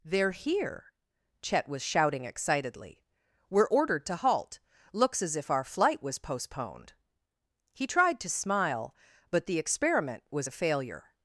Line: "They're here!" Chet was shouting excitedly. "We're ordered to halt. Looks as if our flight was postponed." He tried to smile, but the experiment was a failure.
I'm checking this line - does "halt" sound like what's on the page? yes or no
yes